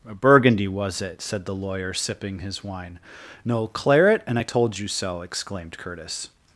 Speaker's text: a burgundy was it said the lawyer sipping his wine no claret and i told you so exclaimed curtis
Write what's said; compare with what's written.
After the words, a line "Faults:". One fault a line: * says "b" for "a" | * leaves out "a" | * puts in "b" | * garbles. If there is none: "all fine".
a burgundy was it said the lawyer sipping his wine no claret and i told you so exclaimed curtis
Faults:
all fine